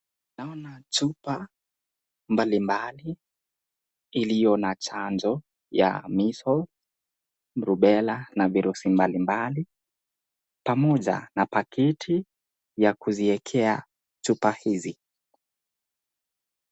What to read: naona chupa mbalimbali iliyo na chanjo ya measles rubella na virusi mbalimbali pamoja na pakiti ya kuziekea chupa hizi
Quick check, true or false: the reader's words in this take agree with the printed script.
true